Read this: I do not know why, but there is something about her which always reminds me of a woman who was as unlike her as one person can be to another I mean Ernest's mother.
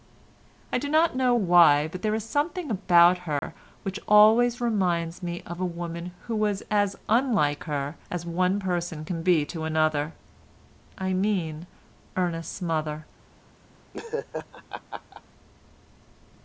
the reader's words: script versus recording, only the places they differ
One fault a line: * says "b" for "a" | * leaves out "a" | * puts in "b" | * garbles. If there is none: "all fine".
all fine